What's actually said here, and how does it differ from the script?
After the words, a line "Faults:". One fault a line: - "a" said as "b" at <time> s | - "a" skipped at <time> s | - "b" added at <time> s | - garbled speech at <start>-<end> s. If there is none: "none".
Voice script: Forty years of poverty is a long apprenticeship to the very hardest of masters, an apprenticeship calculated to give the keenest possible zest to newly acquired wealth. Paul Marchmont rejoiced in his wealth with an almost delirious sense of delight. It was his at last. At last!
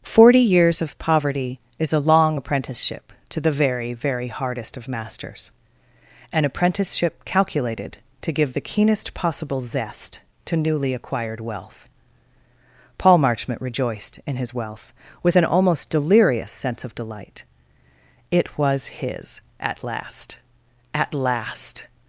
Forty years of poverty is a long apprenticeship to the very very hardest of masters, an apprenticeship calculated to give the keenest possible zest to newly acquired wealth. Paul Marchmont rejoiced in his wealth with an almost delirious sense of delight. It was his at last. At last!
Faults:
- "very" added at 3.9 s